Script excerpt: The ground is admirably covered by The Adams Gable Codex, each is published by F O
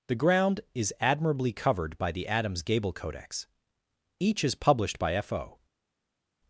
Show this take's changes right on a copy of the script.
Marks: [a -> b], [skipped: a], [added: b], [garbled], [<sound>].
The ground is admirably covered by The Adams Gable Codex, each is published by F O